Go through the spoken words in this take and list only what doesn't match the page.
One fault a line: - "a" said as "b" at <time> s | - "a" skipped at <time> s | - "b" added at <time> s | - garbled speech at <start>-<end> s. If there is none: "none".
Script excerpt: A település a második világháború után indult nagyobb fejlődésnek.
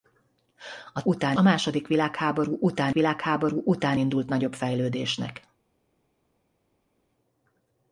- "település" said as "után" at 1.0 s
- "világháború után" added at 2.9 s